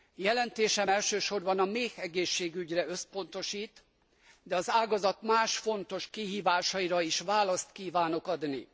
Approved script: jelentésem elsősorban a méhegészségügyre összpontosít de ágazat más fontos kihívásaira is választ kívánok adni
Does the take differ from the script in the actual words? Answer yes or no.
yes